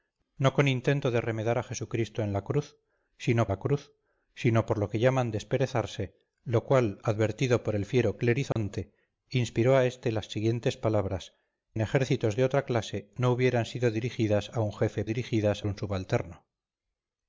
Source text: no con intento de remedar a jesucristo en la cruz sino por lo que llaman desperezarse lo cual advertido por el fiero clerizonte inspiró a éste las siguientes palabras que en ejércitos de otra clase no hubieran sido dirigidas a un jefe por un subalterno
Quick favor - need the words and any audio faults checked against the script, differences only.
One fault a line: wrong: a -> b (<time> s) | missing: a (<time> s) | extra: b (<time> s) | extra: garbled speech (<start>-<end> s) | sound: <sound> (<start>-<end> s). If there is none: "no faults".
extra: la cruz sino (3.5 s)
sound: dropout (8.5-8.6 s)
missing: que (11.3 s)
wrong: por -> dirigidas (15.0 s)